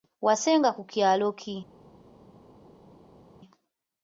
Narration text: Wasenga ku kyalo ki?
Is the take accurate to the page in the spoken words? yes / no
yes